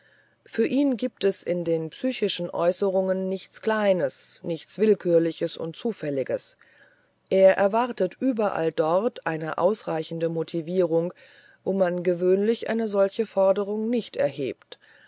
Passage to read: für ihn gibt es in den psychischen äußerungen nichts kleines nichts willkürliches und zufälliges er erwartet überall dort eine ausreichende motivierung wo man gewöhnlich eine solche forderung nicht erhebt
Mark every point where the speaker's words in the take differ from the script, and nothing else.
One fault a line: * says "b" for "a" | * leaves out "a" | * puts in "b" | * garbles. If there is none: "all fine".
all fine